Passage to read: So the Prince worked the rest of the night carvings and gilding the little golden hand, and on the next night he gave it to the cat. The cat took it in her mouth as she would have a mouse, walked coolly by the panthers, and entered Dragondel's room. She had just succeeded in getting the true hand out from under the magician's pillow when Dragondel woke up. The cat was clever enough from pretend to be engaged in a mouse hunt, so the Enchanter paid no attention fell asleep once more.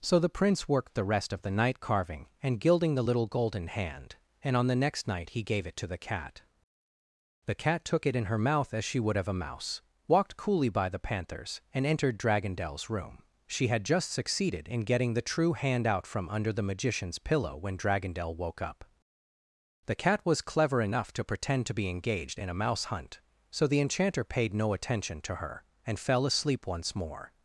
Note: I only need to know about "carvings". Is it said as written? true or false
false